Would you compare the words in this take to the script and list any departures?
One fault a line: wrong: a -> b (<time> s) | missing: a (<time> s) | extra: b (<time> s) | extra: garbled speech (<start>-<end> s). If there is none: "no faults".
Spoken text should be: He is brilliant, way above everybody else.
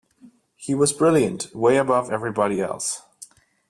wrong: is -> was (0.7 s)